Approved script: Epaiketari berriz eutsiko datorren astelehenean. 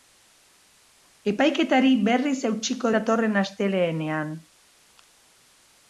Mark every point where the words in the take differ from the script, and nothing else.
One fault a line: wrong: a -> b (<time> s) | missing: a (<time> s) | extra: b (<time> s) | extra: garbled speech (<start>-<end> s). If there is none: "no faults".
no faults